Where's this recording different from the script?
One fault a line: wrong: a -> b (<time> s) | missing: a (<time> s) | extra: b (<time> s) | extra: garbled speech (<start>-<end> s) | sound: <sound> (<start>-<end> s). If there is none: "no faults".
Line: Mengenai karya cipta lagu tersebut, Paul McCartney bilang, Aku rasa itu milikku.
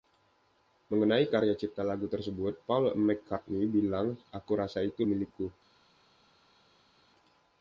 no faults